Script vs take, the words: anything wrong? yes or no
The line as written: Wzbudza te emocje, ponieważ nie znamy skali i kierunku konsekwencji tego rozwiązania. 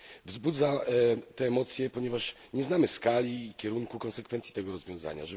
no